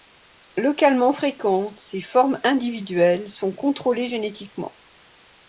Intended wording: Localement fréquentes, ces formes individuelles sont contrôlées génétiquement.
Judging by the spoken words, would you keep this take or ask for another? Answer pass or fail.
pass